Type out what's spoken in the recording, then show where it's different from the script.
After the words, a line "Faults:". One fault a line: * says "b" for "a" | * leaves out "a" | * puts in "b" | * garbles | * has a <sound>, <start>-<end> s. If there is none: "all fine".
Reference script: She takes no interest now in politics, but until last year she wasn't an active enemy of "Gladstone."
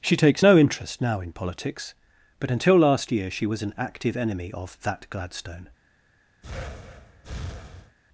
She takes no interest now in politics, but until last year she was an active enemy of "that Gladstone."
Faults:
* says "was" for "wasn't"
* puts in "that"
* has a breath, 6.4-8.0 s